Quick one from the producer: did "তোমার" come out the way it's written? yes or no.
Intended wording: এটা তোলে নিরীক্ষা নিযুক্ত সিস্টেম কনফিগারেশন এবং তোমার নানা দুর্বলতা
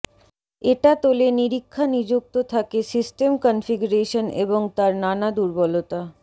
no